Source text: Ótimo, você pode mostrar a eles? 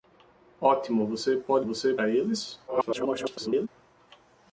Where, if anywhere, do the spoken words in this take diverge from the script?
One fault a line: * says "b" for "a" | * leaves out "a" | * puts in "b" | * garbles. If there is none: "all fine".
* says "você" for "mostrar"
* garbles